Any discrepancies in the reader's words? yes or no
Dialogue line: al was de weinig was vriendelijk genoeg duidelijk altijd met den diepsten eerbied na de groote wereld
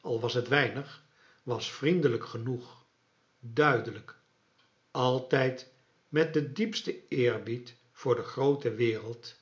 yes